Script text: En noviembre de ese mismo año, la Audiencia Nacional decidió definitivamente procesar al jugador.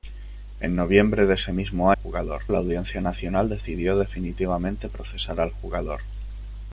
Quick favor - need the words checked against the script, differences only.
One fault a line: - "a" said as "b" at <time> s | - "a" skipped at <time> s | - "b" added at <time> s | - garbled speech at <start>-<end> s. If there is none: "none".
- "año" said as "jugador" at 1.9 s